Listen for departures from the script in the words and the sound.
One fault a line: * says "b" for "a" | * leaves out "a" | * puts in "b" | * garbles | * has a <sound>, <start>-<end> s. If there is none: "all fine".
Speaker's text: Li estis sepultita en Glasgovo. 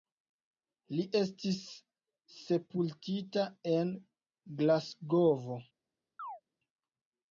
* has a chirp, 6.2-6.4 s